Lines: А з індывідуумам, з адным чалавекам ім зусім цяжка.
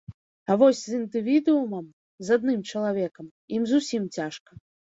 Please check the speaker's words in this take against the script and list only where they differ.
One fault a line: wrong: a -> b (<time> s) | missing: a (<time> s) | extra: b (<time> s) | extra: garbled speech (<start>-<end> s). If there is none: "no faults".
extra: вось (0.6 s)